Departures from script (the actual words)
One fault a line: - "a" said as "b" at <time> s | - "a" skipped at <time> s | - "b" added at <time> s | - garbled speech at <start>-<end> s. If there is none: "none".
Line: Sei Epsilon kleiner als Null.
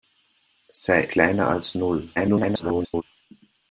- "Epsilon" skipped at 1.0 s
- garbled speech at 2.2-3.0 s